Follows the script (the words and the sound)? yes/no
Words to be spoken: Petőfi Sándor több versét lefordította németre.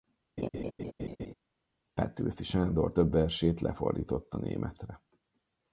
no